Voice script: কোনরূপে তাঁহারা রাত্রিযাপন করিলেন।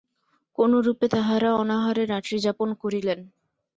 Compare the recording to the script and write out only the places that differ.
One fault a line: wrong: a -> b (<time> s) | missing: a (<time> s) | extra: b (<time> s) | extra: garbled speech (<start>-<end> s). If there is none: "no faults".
extra: অনাহারে (1.6 s)